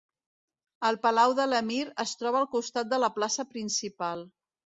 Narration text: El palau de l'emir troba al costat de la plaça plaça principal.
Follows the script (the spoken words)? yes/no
no